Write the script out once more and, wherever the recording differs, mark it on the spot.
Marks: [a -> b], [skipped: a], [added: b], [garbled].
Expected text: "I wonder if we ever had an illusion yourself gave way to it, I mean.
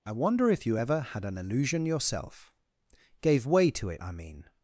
"I wonder if [we -> you] ever had an illusion yourself gave way to it, I mean.